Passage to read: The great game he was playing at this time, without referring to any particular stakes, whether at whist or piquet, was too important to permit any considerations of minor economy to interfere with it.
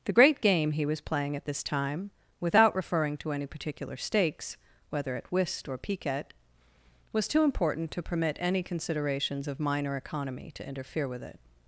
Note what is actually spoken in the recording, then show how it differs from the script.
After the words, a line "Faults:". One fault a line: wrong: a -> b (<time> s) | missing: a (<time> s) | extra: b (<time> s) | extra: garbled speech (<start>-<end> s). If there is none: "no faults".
The great game he was playing at this time, without referring to any particular stakes, whether at whist or piquet, was too important to permit any considerations of minor economy to interfere with it.
Faults:
no faults